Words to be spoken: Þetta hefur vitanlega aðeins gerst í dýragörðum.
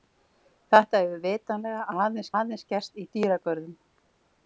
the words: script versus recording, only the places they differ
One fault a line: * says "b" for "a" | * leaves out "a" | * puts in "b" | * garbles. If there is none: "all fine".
* puts in "aðeins"